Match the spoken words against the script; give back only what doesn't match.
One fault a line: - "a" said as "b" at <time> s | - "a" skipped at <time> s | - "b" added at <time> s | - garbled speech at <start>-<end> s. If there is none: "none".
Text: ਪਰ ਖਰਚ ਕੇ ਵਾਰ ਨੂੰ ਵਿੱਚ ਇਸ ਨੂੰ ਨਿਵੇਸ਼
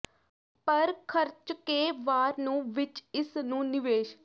none